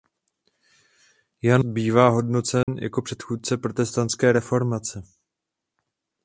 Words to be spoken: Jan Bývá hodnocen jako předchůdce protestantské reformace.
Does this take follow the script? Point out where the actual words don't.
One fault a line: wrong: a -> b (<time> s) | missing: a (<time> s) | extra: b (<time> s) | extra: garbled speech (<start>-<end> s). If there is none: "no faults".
no faults